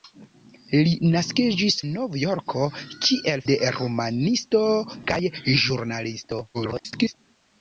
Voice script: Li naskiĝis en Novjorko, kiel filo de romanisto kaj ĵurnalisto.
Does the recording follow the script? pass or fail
fail